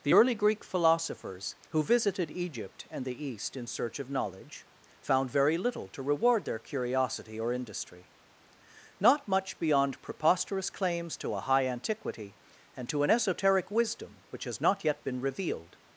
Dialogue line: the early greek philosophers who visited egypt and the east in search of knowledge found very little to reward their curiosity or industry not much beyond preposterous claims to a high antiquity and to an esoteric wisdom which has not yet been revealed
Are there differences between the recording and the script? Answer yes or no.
no